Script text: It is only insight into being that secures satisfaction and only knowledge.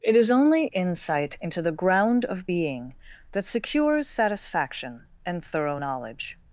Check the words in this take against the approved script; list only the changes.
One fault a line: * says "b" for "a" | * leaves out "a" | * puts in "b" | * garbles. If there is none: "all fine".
* puts in "the ground of"
* says "thorough" for "only"